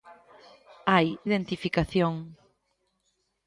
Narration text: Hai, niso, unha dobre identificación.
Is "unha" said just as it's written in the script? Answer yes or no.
no